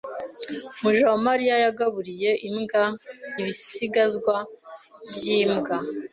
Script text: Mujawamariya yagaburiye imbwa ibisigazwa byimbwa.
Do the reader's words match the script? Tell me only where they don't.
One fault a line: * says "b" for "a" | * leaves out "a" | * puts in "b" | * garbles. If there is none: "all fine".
all fine